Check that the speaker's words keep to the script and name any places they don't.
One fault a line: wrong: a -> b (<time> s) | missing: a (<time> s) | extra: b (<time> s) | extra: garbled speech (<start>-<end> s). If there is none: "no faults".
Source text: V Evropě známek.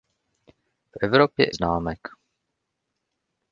no faults